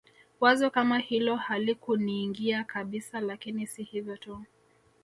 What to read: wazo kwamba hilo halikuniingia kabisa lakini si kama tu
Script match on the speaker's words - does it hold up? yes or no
no